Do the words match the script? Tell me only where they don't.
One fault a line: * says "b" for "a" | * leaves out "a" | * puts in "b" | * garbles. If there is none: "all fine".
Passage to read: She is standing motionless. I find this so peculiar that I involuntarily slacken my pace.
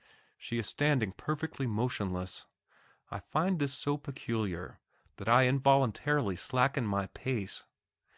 * puts in "perfectly"